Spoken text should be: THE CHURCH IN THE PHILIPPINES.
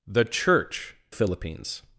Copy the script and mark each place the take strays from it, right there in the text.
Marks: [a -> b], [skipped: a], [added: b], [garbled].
THE CHURCH [skipped: IN THE] PHILIPPINES.